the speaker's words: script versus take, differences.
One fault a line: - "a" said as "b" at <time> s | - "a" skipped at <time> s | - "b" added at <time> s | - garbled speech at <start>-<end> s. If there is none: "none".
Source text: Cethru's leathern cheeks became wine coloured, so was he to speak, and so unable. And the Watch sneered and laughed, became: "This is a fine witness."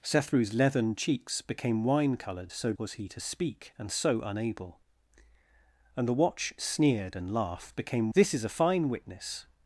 none